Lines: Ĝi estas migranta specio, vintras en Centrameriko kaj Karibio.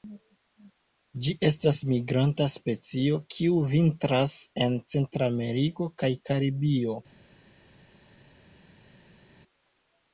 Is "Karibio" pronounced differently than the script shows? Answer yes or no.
no